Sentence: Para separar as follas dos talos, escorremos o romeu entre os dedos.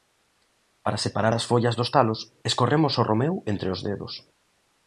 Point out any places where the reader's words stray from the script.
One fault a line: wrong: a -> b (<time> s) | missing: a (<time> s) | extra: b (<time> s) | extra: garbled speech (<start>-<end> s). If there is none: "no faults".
no faults